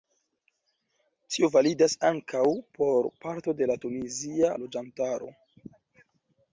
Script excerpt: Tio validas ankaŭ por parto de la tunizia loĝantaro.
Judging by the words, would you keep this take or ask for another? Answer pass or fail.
pass